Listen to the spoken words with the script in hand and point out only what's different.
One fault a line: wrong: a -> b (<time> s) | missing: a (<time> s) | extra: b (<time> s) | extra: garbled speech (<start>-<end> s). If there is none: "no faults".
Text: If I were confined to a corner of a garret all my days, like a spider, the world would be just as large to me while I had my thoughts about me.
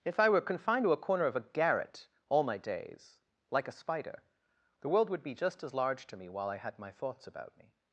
no faults